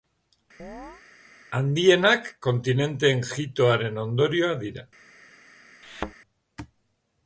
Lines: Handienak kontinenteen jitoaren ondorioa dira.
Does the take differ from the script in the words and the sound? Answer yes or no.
yes